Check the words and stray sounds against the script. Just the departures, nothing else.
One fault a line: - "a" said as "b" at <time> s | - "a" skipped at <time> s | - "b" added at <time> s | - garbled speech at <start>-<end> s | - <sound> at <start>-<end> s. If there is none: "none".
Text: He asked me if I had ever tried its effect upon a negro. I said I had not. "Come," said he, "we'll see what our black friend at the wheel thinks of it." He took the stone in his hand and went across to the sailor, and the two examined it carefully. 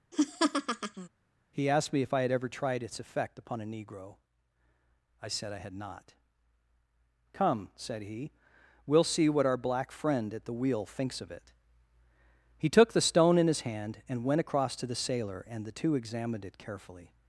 - laugh at 0.1-1.1 s